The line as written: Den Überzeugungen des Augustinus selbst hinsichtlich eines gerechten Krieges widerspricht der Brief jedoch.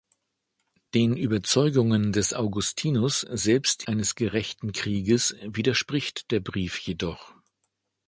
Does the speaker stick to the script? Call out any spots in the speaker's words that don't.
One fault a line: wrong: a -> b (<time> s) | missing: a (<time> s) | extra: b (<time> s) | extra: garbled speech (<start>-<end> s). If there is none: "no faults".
missing: hinsichtlich (3.8 s)